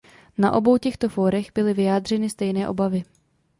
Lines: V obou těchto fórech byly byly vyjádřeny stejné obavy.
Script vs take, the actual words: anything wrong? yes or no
yes